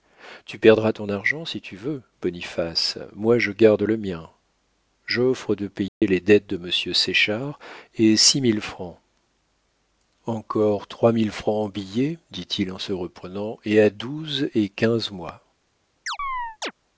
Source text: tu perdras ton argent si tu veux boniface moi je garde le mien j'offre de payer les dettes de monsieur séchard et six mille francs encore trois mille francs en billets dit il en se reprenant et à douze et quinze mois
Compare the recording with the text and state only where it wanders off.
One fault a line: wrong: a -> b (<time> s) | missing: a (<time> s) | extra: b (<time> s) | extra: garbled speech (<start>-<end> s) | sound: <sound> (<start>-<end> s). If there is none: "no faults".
sound: dropout (5.9-6.0 s)
sound: chirp (16.1-16.7 s)